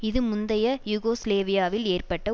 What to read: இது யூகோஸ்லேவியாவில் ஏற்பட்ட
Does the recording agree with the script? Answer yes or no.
no